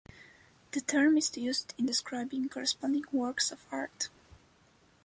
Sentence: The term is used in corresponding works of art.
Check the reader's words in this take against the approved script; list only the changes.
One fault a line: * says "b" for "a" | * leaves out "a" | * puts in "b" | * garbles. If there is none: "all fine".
* puts in "describing"